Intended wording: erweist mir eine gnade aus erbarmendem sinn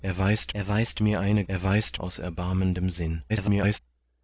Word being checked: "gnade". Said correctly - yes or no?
no